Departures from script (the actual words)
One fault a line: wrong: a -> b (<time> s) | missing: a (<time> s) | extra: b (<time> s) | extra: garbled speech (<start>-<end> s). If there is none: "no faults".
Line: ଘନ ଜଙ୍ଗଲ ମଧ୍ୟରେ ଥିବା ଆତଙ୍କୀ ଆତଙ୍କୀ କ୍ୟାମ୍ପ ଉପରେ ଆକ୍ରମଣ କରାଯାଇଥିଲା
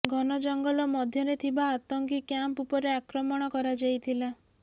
missing: ଆତଙ୍କୀ (2.2 s)